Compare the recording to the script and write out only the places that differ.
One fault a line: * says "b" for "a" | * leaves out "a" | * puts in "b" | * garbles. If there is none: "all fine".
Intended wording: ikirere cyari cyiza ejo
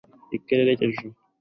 * leaves out "cyari cyiza"